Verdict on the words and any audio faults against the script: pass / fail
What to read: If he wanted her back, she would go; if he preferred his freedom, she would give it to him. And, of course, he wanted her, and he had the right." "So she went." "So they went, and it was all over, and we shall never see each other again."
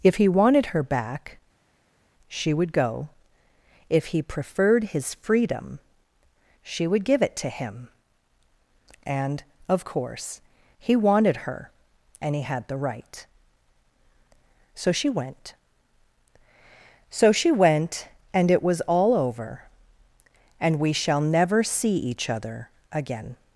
fail